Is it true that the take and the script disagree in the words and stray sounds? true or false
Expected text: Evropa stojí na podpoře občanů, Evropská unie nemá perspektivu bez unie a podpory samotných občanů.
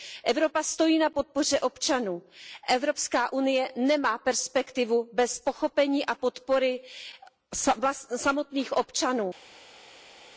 true